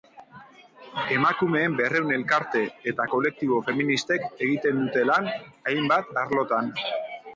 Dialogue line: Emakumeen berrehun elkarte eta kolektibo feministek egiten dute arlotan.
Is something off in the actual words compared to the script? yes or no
yes